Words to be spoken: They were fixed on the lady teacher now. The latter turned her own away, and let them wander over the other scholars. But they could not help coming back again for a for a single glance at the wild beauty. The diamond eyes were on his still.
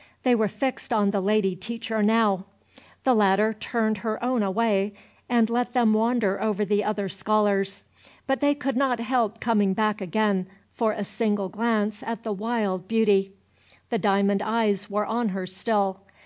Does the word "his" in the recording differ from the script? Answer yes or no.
yes